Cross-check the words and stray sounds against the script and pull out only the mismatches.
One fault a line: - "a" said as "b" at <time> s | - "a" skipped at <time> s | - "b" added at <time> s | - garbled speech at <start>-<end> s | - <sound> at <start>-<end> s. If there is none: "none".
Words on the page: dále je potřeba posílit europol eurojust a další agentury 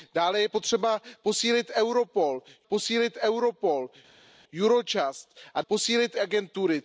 - "posílit europol" added at 2.7 s
- "další" said as "posílit" at 5.7 s